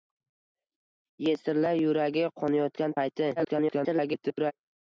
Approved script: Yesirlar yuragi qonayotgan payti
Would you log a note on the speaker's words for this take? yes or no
yes